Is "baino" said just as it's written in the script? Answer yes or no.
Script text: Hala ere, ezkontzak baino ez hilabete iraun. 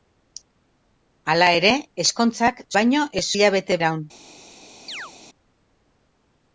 yes